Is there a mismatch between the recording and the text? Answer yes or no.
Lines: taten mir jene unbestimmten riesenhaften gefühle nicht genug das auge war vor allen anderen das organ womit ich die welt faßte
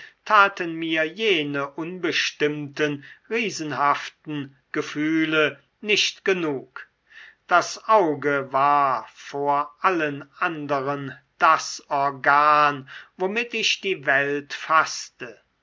no